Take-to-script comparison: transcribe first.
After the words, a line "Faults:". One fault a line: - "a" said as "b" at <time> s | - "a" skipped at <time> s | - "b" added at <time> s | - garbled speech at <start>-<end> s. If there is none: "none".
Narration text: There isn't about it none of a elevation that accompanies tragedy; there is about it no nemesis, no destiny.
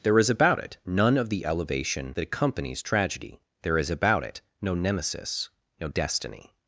There is about it none of the elevation that accompanies tragedy; there is about it no nemesis, no destiny.
Faults:
- "isn't" said as "is" at 0.2 s
- "a" said as "the" at 1.3 s